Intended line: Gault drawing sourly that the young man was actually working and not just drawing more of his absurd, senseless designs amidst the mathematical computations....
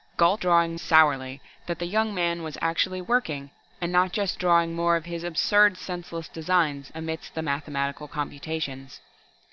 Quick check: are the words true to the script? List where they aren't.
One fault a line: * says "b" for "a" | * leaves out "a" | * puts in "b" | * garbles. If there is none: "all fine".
all fine